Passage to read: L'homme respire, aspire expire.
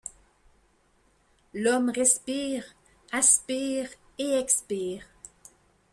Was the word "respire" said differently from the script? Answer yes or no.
no